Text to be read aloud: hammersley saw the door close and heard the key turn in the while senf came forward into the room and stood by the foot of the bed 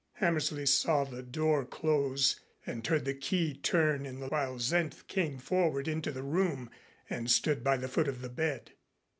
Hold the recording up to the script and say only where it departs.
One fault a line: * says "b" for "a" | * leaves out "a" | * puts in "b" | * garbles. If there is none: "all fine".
all fine